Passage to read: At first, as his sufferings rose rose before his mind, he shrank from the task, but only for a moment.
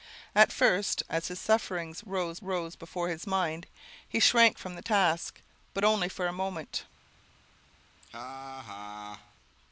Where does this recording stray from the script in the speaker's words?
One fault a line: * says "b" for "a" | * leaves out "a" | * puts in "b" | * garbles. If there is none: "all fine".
all fine